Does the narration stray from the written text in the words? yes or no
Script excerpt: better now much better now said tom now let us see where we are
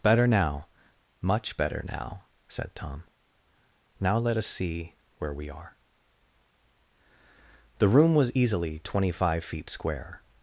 yes